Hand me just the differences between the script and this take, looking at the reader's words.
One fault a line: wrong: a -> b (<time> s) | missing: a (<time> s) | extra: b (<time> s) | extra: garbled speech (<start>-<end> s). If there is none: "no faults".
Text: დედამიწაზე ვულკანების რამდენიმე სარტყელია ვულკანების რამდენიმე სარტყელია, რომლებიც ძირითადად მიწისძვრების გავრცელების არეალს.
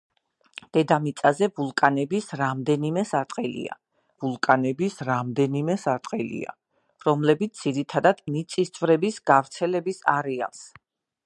no faults